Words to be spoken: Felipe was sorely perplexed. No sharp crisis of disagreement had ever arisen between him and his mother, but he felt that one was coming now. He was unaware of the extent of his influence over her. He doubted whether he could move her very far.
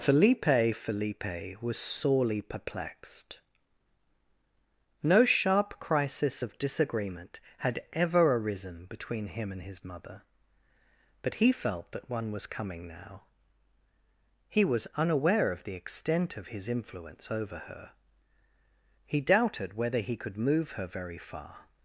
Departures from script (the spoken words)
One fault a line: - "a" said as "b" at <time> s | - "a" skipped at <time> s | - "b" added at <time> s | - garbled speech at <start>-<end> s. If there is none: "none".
- "felipe" added at 0.8 s